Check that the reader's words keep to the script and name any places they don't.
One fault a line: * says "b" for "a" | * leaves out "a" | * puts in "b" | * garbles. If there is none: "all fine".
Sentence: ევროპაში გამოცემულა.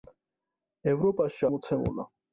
all fine